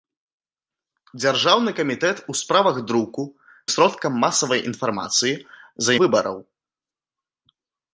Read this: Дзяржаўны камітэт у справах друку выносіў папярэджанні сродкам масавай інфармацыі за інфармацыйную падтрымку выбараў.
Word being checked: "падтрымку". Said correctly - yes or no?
no